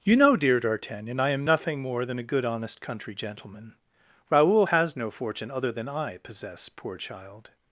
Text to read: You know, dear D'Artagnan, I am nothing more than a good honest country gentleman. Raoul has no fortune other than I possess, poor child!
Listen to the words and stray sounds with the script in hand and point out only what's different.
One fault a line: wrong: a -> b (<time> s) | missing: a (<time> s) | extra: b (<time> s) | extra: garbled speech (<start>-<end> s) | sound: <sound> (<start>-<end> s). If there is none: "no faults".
no faults